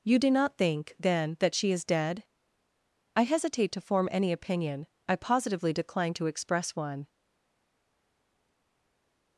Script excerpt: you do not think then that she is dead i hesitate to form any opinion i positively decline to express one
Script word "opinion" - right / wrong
right